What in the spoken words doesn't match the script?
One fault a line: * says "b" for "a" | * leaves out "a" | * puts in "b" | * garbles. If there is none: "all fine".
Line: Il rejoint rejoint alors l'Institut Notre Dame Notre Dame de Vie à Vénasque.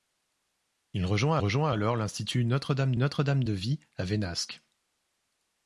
all fine